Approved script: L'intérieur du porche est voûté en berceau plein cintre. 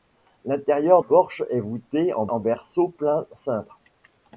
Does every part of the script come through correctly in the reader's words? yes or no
no